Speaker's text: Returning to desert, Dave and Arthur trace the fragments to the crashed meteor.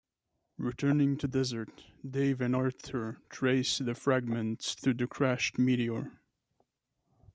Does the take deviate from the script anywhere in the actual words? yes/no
no